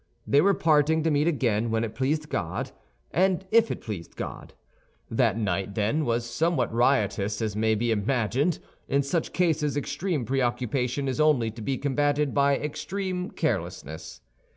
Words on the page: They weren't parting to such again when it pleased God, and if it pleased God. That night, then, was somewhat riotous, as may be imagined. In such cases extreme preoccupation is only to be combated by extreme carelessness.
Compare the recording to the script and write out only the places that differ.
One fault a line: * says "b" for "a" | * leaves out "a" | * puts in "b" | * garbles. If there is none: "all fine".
* says "were" for "weren't"
* says "meet" for "such"